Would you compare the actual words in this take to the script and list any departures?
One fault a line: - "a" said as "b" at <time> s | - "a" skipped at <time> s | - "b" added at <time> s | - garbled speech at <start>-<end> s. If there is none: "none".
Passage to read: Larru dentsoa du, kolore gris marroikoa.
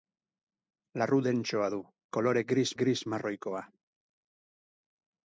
- "gris" added at 2.8 s